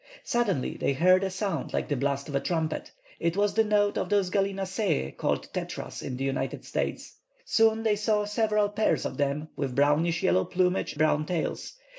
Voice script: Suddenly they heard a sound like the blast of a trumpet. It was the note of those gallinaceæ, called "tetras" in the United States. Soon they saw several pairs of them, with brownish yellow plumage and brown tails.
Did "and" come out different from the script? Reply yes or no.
yes